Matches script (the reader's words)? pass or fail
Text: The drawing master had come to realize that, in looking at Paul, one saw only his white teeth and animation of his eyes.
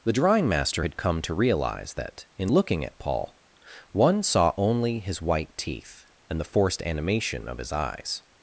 fail